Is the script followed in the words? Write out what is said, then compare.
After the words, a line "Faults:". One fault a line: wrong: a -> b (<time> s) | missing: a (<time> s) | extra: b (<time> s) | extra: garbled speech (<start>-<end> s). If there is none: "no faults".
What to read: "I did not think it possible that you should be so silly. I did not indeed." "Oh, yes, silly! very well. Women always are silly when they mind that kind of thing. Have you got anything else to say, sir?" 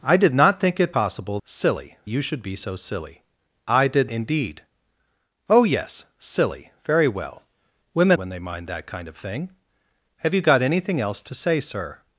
"I did not think it possible silly you should be so silly. I did indeed." "Oh, yes, silly! very well. Women when they mind that kind of thing. Have you got anything else to say, sir?"
Faults:
wrong: that -> silly (1.4 s)
missing: not (4.1 s)
missing: always are silly (8.2 s)